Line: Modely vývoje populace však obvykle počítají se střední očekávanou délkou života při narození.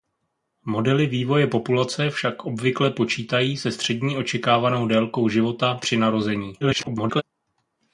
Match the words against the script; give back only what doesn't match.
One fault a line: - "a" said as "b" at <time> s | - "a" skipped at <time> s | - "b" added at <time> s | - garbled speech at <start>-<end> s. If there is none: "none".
- garbled speech at 6.6-7.2 s